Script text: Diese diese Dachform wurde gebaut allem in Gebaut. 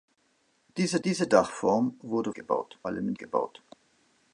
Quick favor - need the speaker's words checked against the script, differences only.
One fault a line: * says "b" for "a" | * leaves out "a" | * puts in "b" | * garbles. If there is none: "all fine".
all fine